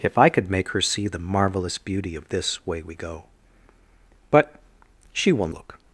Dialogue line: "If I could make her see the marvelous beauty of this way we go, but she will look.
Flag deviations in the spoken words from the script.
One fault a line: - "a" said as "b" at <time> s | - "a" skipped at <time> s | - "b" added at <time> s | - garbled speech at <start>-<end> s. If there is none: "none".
none